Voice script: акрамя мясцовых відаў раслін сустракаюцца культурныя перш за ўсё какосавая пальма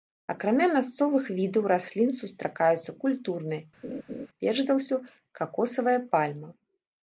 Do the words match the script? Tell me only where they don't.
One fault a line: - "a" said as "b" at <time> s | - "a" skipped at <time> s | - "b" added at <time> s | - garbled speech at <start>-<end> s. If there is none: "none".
none